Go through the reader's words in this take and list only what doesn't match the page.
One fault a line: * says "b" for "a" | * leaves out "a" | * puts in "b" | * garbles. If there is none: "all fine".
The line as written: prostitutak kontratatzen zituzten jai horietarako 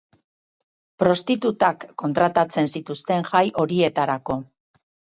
all fine